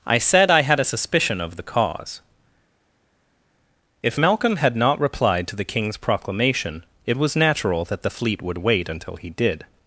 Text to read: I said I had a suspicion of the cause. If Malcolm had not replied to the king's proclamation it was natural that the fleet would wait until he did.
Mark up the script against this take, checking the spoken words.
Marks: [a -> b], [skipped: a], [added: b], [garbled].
I said I had a suspicion of the cause. If Malcolm had not replied to the king's proclamation it was natural that the fleet would wait until he did.